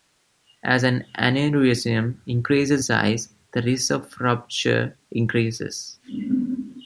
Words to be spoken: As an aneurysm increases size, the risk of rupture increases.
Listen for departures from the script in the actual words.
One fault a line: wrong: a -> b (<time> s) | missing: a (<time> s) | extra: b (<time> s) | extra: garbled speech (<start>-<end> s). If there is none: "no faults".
no faults